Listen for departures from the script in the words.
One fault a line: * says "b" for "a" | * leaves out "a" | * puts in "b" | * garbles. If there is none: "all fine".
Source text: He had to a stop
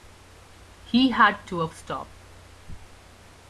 all fine